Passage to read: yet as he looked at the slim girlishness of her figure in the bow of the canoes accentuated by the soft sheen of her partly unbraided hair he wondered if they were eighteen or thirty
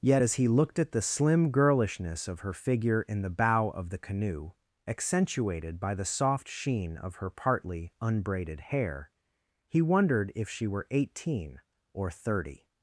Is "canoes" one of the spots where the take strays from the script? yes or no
yes